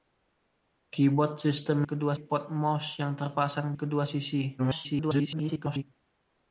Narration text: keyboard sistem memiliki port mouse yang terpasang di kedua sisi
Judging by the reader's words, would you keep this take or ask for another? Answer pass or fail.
fail